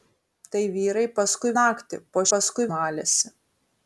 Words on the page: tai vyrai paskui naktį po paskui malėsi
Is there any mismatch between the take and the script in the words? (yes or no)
no